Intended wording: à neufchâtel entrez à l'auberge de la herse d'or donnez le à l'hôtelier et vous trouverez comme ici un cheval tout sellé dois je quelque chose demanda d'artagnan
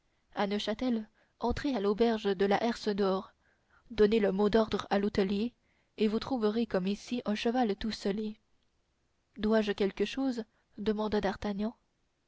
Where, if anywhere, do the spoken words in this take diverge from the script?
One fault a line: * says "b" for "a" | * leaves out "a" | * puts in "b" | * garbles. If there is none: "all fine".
* puts in "mot d'ordre"